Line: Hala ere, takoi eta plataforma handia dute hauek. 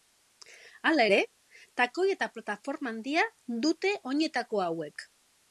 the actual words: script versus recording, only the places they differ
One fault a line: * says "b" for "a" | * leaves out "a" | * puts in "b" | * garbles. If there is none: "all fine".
* puts in "oinetako"